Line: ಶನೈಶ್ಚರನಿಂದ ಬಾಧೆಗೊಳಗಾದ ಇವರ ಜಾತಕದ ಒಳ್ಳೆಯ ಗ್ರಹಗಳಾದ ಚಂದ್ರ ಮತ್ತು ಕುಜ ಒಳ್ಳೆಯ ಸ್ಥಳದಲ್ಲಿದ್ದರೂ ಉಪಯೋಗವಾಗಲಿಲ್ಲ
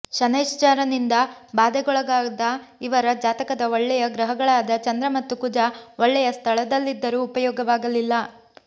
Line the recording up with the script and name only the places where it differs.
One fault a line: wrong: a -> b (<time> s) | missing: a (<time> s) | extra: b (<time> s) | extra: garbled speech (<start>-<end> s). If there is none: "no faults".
no faults